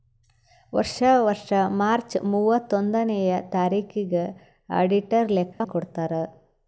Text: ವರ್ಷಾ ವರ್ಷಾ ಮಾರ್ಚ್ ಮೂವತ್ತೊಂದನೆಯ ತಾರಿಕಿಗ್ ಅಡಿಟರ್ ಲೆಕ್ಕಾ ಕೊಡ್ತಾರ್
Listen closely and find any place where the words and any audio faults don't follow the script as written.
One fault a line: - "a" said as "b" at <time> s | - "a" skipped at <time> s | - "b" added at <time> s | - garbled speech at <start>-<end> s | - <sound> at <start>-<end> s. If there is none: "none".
- dropout at 5.5-5.6 s